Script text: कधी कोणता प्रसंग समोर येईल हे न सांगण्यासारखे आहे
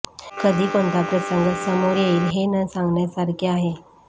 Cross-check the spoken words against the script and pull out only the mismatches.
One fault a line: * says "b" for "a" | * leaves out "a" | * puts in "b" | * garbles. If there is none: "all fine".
all fine